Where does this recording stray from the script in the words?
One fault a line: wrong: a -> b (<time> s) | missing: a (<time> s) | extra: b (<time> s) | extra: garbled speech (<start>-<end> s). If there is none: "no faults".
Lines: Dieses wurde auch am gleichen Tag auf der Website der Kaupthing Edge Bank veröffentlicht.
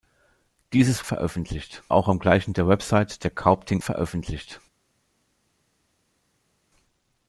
wrong: wurde -> veröffentlicht (1.0 s)
missing: Tag auf (2.5 s)
missing: Edge Bank (3.8 s)